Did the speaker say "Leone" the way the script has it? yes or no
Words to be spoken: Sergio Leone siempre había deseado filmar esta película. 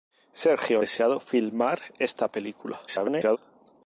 no